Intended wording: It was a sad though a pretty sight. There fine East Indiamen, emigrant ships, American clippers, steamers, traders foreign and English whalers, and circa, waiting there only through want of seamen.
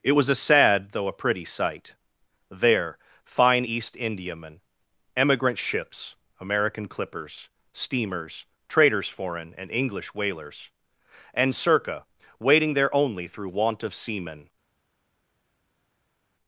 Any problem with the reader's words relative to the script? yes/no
no